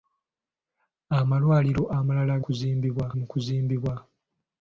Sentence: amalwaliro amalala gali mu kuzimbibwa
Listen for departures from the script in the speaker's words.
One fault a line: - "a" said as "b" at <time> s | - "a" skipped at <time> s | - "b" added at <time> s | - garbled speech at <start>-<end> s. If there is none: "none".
- "gali" said as "kuzimbibwa" at 2.4 s